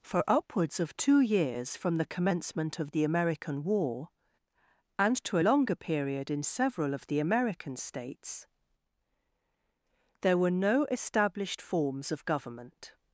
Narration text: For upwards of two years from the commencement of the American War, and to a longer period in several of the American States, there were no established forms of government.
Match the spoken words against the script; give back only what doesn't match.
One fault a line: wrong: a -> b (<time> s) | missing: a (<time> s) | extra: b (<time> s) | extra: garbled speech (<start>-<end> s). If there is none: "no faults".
missing: a (5.4 s)